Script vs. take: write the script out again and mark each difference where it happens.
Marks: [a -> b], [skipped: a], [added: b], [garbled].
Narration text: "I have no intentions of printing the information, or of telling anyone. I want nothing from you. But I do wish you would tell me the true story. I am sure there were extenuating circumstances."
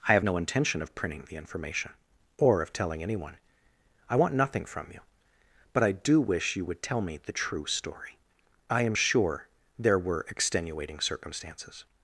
"I have no [intentions -> intention] of printing the information, or of telling anyone. I want nothing from you. But I do wish you would tell me the true story. I am sure there were extenuating circumstances."